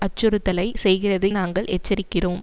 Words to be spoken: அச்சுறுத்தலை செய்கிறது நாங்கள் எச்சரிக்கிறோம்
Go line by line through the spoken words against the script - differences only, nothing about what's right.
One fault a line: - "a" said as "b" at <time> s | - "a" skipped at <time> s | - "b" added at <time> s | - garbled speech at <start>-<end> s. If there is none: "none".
none